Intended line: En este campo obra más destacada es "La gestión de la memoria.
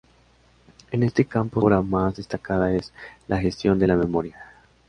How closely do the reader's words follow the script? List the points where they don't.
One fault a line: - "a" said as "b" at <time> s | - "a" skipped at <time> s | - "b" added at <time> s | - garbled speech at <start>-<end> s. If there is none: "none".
none